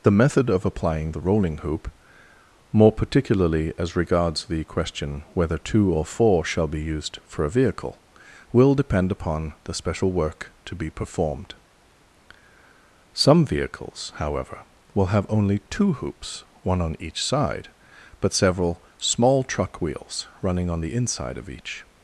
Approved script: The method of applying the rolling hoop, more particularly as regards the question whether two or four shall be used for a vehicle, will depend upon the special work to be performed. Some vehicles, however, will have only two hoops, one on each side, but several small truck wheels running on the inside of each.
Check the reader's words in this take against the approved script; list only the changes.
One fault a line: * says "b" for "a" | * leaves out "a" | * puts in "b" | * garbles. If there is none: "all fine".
all fine